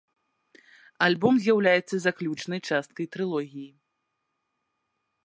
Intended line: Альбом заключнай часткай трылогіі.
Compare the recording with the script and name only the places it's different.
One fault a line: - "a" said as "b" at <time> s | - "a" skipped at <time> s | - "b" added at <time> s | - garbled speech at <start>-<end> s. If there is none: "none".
- "з'яўляецца" added at 1.4 s